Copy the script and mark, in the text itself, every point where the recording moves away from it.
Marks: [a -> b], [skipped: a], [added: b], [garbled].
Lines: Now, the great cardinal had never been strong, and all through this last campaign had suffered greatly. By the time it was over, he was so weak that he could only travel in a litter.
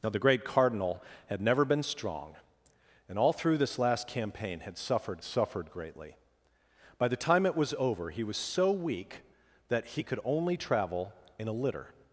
Now, the great cardinal had never been strong, and all through this last campaign had suffered [added: suffered] greatly. By the time it was over, he was so weak that he could only travel in a litter.